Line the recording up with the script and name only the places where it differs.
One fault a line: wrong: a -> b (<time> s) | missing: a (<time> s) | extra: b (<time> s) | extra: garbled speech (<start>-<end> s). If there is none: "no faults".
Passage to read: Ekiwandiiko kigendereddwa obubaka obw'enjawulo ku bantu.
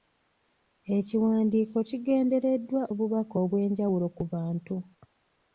no faults